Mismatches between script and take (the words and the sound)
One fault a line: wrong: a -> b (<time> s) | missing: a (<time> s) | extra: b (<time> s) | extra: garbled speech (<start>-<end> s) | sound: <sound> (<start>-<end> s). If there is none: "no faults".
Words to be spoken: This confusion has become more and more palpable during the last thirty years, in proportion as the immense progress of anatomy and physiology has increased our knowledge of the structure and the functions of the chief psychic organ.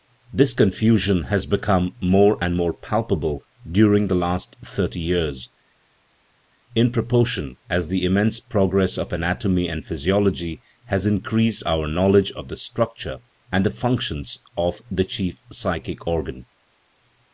no faults